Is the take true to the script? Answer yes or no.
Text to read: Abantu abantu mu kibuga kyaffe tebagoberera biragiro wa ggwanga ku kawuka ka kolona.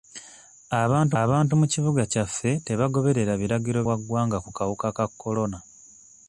yes